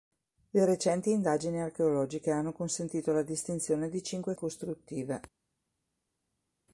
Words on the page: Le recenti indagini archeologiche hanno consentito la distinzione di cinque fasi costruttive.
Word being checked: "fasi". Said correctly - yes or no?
no